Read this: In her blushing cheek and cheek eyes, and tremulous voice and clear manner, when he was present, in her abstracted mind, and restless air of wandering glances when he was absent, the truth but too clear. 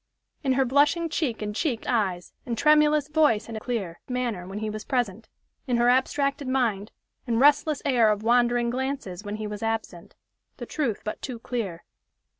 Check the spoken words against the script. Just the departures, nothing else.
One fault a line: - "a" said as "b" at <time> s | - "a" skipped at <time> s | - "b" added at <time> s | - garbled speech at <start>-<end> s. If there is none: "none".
none